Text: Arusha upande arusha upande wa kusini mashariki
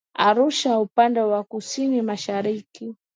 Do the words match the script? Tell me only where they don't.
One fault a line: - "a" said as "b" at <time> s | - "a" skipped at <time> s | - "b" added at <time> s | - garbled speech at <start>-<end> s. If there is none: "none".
- "arusha upande" skipped at 1.2 s